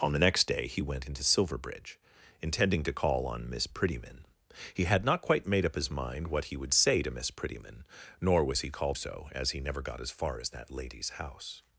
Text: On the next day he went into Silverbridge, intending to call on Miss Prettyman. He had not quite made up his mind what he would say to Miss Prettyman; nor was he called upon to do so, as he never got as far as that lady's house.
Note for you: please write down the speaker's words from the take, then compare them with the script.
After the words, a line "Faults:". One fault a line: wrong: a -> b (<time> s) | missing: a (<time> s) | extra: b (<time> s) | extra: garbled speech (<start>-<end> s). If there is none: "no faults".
On the next day he went into Silverbridge, intending to call on Miss Prettyman. He had not quite made up his mind what he would say to Miss Prettyman; nor was he called so, as he never got as far as that lady's house.
Faults:
missing: upon to do (9.0 s)